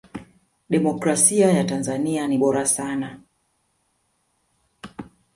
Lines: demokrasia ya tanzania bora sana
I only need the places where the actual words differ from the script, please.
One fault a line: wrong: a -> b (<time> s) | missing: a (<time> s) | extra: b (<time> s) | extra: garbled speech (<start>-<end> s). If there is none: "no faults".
extra: ni (2.2 s)